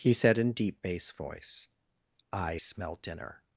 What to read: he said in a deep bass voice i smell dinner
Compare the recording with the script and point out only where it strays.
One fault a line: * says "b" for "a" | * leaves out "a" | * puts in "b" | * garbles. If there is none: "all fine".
* leaves out "a"